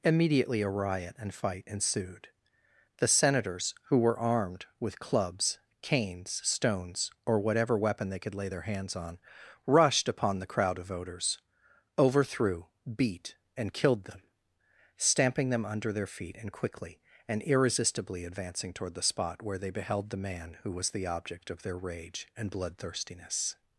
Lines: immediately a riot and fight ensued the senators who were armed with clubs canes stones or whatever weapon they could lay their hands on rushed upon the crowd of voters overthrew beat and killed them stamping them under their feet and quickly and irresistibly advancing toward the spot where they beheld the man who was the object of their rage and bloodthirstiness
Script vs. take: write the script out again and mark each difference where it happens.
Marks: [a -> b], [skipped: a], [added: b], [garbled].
immediately a riot and fight ensued the senators who were armed with clubs canes stones or whatever weapon they could lay their hands on rushed upon the crowd of voters overthrew beat and killed them stamping them under their feet and quickly and irresistibly advancing toward the spot where they beheld the man who was the object of their rage and bloodthirstiness